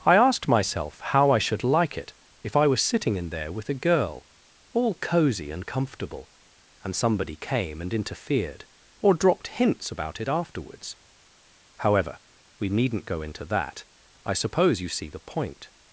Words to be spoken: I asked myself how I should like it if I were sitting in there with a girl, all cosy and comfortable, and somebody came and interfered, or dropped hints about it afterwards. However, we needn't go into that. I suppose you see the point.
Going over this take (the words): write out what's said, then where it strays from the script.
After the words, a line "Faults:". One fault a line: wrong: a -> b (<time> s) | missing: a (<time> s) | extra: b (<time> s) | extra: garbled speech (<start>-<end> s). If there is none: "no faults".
I asked myself how I should like it if I was sitting in there with a girl, all cosy and comfortable, and somebody came and interfered, or dropped hints about it afterwards. However, we needn't go into that. I suppose you see the point.
Faults:
wrong: were -> was (2.6 s)